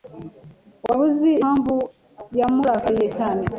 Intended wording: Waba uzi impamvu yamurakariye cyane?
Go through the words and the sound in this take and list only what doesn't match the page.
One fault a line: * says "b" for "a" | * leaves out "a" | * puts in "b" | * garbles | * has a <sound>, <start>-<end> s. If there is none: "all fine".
all fine